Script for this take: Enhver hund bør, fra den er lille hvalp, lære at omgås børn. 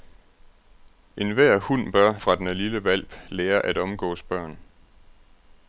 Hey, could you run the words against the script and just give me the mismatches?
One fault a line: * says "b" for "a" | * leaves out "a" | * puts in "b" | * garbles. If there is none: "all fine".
all fine